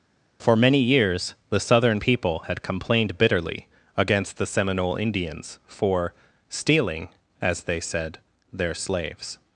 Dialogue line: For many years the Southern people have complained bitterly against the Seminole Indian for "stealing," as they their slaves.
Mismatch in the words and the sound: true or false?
true